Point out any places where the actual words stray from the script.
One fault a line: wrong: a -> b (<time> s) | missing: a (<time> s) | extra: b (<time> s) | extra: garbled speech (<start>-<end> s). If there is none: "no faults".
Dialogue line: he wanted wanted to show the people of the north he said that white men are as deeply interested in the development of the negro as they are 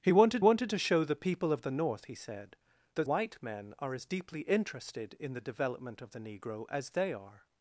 no faults